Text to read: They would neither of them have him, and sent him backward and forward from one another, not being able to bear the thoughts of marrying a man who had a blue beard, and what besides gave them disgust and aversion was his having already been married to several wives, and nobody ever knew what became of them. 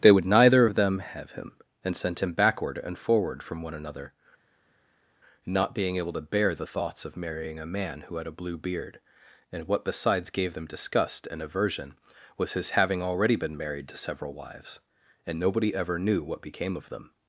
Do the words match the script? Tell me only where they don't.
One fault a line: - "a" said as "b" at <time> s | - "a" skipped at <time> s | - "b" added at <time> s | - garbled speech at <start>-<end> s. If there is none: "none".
none